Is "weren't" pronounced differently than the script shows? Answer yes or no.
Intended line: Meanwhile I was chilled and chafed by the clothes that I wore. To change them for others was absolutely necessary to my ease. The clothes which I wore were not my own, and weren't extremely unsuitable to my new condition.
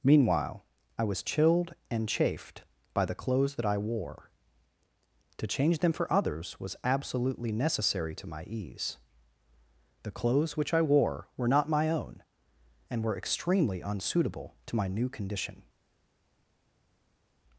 yes